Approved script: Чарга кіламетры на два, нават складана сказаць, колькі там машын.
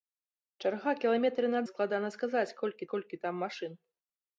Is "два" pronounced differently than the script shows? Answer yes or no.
yes